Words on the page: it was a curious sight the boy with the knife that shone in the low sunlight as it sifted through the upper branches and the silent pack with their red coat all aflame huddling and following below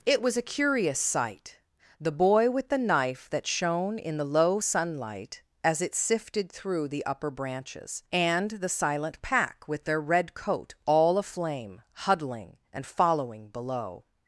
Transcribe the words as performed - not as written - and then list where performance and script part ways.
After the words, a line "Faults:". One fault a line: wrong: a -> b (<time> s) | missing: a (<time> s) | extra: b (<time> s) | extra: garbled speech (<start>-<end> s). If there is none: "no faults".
it was a curious sight the boy with the knife that shone in the low sunlight as it sifted through the upper branches and the silent pack with their red coat all aflame huddling and following below
Faults:
no faults